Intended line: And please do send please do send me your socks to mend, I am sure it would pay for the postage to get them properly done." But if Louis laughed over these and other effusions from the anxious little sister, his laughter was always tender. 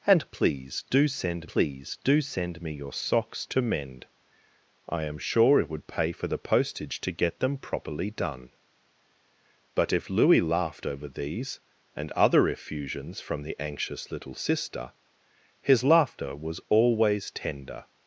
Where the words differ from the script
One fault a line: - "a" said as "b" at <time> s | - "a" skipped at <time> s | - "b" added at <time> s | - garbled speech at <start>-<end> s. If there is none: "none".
none